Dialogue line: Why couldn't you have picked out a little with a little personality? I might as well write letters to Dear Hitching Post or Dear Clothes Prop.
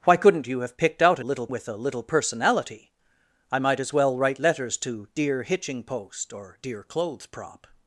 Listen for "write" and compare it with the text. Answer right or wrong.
right